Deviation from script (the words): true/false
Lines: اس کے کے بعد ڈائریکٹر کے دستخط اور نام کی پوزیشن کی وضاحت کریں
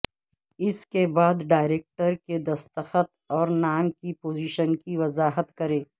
true